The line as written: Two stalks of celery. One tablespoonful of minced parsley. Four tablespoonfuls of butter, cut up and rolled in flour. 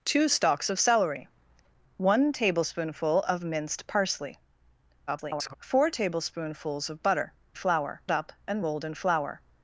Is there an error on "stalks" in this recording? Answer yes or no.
no